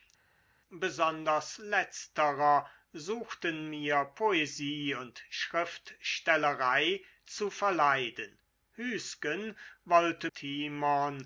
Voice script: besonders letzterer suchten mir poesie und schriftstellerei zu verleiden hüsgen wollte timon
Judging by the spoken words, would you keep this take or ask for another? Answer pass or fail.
pass